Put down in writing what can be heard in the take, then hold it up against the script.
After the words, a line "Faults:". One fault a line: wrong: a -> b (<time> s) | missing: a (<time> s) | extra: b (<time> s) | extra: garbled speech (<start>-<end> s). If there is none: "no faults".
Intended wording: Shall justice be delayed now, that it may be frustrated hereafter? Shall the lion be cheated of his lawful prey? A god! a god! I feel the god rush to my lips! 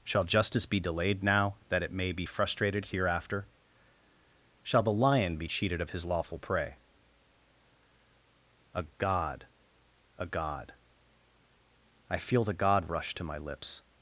Shall justice be delayed now, that it may be frustrated hereafter? Shall the lion be cheated of his lawful prey? A god! a god! I feel the god rush to my lips!
Faults:
no faults